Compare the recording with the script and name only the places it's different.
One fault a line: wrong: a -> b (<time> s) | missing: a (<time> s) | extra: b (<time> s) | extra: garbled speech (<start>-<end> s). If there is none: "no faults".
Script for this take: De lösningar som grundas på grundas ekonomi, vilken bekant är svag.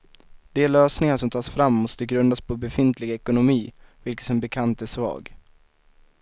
extra: tas fram måste (1.3 s)
wrong: grundas -> befintlig (2.6 s)
extra: som (4.2 s)